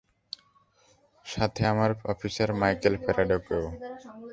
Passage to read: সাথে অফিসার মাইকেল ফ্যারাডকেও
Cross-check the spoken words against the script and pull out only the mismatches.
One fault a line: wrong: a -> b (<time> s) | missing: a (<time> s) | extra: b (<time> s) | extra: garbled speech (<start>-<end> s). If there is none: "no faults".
extra: আমার (1.7 s)